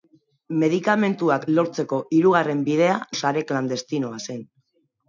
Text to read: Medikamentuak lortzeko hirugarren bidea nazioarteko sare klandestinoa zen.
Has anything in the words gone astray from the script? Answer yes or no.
yes